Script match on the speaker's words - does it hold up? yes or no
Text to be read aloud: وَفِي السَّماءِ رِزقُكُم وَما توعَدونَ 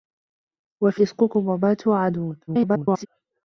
no